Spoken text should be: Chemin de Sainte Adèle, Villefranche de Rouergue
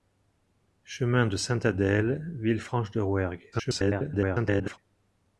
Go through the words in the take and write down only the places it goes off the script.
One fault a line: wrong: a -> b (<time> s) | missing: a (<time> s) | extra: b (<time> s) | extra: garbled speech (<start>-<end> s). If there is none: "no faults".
extra: garbled speech (3.5-4.8 s)